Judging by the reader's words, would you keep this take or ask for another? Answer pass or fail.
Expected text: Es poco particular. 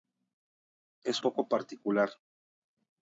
pass